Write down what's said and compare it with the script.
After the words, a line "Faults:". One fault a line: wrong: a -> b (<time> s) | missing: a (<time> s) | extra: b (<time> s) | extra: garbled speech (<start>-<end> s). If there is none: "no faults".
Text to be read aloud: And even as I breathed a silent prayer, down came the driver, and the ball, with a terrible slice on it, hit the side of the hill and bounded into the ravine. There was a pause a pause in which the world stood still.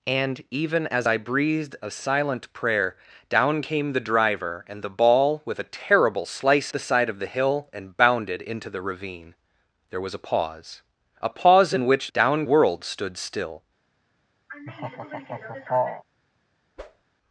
And even as I breathed a silent prayer, down came the driver, and the ball, with a terrible slice the side of the hill and bounded into the ravine. There was a pause a pause in which down world stood still.
Faults:
missing: on it hit (6.7 s)
wrong: the -> down (12.1 s)